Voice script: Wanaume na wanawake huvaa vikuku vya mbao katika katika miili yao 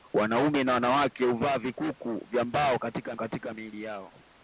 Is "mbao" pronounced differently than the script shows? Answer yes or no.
no